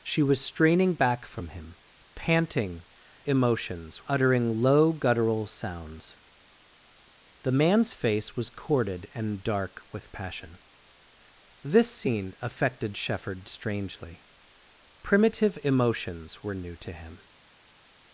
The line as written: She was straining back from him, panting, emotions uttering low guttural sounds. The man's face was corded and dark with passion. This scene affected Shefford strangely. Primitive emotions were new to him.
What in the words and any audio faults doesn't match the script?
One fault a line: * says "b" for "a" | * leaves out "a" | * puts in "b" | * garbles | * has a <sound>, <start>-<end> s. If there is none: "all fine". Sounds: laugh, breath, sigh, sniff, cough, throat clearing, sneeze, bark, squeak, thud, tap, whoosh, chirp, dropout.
all fine